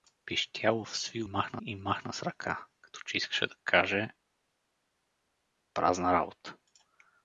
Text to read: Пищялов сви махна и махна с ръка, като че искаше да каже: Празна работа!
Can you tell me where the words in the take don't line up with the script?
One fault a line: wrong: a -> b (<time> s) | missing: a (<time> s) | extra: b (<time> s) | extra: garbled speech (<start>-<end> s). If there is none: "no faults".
no faults